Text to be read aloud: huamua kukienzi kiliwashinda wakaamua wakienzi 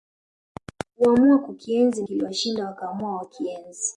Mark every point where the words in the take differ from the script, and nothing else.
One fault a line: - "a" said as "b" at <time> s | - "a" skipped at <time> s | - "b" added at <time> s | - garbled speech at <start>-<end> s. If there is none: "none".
none